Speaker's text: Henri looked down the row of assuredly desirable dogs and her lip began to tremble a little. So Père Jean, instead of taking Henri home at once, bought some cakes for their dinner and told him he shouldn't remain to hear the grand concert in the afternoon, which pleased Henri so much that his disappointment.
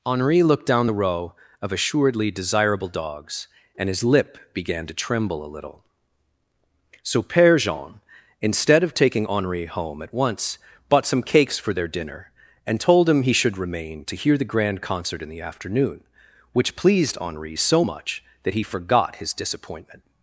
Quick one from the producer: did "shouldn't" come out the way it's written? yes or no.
no